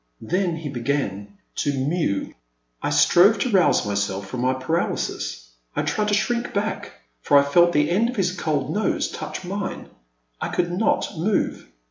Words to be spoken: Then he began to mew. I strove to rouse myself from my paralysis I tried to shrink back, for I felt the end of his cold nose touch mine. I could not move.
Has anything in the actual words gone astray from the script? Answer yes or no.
no